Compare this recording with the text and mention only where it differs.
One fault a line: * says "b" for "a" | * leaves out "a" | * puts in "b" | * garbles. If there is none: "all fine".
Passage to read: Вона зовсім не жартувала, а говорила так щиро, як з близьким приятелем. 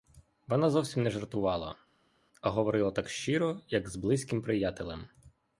all fine